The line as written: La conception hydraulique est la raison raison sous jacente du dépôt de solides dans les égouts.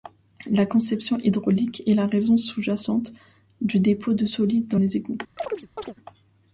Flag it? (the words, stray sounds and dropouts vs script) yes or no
yes